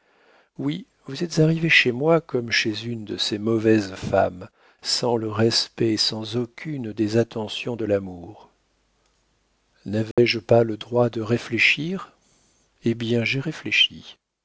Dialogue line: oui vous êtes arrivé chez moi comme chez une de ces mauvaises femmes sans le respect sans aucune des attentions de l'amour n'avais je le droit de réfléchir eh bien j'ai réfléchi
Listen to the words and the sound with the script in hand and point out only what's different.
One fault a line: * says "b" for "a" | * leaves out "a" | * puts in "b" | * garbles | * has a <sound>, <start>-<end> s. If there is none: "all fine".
* has a dropout, 10.1-10.2 s
* puts in "pas"